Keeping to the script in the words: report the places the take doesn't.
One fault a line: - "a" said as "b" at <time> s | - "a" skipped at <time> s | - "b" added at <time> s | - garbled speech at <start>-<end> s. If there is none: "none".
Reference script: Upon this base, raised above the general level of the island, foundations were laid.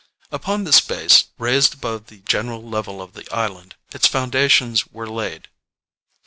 - "its" added at 3.9 s